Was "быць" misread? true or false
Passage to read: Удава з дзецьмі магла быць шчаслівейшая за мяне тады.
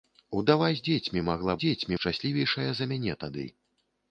true